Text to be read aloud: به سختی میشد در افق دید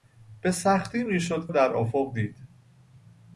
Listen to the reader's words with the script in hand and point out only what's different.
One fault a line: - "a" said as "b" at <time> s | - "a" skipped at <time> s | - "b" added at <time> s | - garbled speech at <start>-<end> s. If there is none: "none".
none